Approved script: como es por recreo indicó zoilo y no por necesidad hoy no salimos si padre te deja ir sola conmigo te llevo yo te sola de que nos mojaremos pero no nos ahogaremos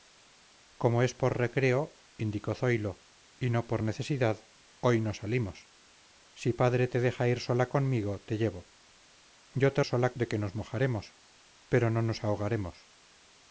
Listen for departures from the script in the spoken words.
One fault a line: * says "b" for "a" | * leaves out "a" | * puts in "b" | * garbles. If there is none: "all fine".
all fine